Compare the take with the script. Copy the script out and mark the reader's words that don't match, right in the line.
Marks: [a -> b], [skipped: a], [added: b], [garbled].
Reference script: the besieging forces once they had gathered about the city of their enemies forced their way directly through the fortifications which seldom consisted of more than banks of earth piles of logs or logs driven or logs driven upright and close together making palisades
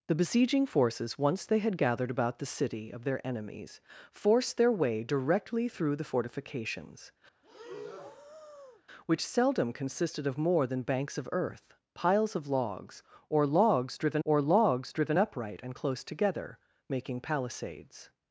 the besieging forces once they had gathered about the city of their enemies forced their way directly through the fortifications which seldom consisted of more than banks of earth piles of logs or logs driven or logs driven upright and close together making palisades